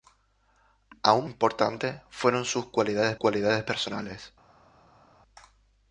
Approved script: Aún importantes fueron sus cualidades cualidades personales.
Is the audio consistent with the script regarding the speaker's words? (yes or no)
yes